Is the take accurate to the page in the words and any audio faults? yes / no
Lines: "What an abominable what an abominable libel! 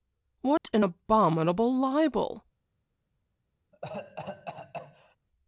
no